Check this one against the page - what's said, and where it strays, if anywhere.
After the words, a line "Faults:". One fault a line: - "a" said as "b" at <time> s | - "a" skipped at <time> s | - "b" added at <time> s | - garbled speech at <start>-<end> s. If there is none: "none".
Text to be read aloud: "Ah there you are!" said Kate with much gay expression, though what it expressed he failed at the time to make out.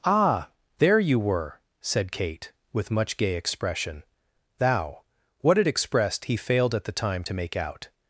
"Ah there you were!" said Kate with much gay expression, thou what it expressed he failed at the time to make out.
Faults:
- "are" said as "were" at 1.2 s
- "though" said as "thou" at 4.6 s